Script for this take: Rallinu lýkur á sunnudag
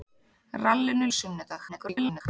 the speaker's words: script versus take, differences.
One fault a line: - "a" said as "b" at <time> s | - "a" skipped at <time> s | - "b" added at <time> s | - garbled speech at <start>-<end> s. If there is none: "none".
- "lýkur" skipped at 1.1 s
- garbled speech at 1.7-2.2 s